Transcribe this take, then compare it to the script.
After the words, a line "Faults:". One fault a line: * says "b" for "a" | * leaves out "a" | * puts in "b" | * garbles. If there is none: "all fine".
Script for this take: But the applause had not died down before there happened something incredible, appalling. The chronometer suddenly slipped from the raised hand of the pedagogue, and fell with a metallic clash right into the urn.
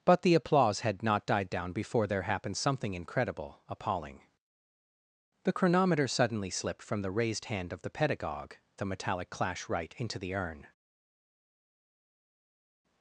But the applause had not died down before there happened something incredible, appalling. The chronometer suddenly slipped from the raised hand of the pedagogue, a metallic clash right into the urn.
Faults:
* leaves out "and fell with"